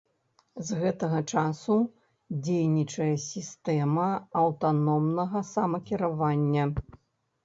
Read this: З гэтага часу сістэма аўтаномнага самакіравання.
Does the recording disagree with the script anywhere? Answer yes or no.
yes